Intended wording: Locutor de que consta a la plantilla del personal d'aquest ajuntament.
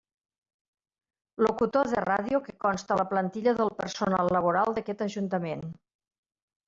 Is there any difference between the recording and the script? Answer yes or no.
yes